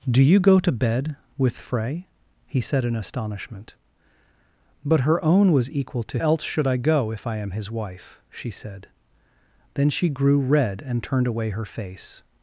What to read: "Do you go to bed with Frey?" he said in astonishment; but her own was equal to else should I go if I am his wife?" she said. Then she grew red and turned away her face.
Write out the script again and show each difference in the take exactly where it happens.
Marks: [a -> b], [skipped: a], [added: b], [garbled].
"Do you go to bed with Frey?" he said in astonishment; but her own was equal to else should I go if I am his wife?" she said. Then she grew red and turned away her face.